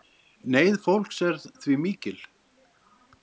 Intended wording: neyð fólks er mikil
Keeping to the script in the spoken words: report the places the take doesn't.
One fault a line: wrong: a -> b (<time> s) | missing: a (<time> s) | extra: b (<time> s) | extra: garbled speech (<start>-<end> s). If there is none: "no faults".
extra: því (1.6 s)